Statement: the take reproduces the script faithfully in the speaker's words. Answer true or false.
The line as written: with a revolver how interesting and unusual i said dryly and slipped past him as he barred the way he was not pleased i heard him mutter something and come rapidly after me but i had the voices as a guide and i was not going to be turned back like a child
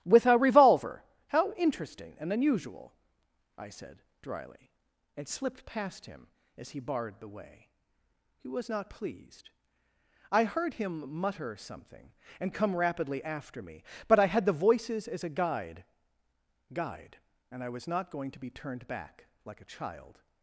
false